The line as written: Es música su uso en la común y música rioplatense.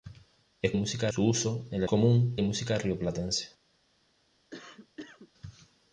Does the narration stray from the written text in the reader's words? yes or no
no